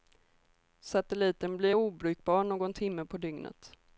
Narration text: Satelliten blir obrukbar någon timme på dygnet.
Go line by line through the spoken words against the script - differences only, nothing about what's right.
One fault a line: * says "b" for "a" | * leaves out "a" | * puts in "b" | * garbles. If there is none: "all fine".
all fine